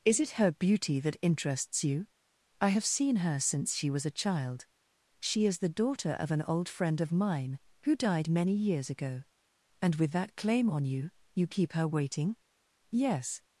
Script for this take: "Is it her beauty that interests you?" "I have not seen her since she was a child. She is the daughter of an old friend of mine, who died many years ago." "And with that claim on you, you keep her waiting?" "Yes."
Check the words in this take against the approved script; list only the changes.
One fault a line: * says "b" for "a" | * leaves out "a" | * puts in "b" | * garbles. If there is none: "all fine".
* leaves out "not"